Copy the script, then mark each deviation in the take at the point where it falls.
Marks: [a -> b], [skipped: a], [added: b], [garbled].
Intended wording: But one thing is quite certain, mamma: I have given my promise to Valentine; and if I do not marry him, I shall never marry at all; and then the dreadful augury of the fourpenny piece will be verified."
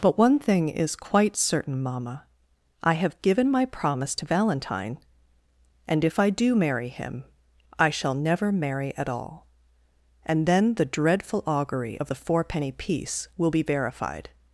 But one thing is quite certain, mamma: I have given my promise to Valentine; and if I do [skipped: not] marry him, I shall never marry at all; and then the dreadful augury of the fourpenny piece will be verified."